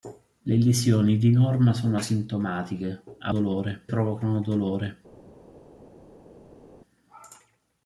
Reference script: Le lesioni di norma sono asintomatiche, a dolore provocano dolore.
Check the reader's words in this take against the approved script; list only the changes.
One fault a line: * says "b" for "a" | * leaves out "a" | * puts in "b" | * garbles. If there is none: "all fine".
all fine